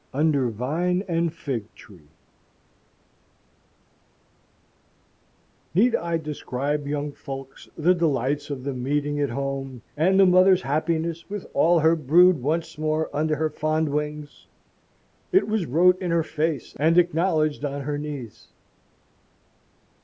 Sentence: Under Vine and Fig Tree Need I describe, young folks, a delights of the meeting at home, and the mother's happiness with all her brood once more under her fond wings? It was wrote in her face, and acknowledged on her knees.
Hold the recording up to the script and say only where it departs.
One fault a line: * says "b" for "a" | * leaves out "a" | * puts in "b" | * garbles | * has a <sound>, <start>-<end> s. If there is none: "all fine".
* says "the" for "a"